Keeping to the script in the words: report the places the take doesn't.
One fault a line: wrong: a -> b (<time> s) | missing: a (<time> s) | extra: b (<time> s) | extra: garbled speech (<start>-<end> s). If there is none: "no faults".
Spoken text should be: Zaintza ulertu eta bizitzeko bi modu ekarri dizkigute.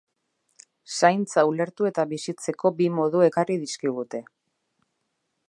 no faults